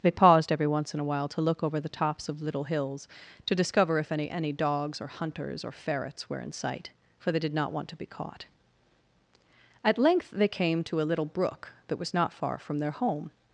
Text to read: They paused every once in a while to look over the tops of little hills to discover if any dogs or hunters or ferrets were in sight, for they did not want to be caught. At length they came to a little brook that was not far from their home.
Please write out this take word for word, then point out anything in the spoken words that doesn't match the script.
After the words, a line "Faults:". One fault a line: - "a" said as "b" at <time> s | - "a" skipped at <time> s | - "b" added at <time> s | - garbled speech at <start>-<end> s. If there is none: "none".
They paused every once in a while to look over the tops of little hills to discover if any any dogs or hunters or ferrets were in sight, for they did not want to be caught. At length they came to a little brook that was not far from their home.
Faults:
- "any" added at 4.3 s